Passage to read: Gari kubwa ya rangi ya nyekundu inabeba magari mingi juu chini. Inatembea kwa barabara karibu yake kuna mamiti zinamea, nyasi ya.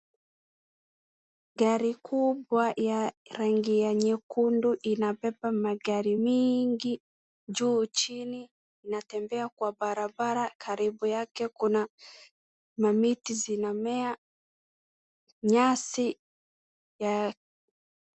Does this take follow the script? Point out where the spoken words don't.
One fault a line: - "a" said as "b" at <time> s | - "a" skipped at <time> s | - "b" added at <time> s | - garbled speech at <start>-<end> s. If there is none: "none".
none